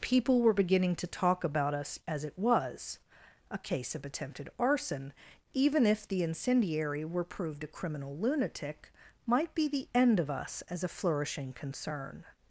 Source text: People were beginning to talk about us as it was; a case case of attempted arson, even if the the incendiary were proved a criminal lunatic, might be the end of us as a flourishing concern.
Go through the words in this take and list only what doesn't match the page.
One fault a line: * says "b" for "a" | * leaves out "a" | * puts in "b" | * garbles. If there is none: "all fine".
* leaves out "case"
* leaves out "the"